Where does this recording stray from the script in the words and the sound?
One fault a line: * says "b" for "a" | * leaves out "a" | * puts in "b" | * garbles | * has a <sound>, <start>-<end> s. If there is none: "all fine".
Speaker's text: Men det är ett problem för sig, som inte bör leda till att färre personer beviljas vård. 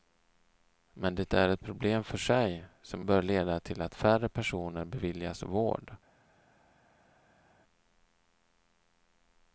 * leaves out "inte"